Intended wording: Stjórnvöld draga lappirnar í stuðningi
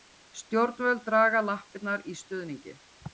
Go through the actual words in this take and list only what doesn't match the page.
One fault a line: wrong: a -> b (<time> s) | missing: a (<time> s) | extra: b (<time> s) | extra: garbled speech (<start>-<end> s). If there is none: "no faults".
no faults